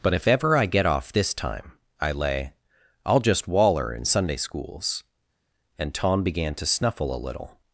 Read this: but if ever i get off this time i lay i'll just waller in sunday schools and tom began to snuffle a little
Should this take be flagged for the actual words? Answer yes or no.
no